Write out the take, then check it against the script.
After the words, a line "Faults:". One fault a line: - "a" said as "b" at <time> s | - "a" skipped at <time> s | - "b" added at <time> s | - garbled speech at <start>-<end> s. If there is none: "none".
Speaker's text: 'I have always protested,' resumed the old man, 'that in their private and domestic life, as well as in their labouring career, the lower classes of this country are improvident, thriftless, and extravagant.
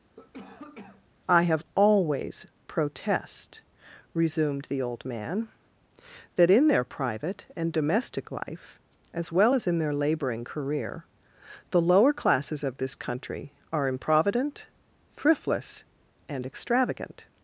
'I have always protest,' resumed the old man, 'that in their private and domestic life, as well as in their labouring career, the lower classes of this country are improvident, thriftless, and extravagant.
Faults:
- "protested" said as "protest" at 2.7 s